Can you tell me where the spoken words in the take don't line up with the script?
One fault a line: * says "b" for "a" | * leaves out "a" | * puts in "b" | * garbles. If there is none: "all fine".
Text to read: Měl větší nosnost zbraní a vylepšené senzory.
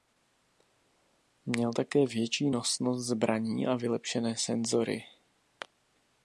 * puts in "také"